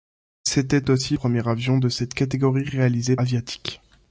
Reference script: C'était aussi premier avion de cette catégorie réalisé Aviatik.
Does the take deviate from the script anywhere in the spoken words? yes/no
no